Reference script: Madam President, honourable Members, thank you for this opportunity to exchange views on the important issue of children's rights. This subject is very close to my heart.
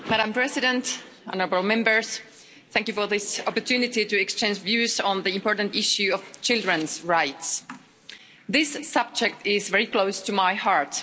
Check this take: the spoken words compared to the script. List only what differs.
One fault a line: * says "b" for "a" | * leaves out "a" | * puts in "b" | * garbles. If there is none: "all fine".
all fine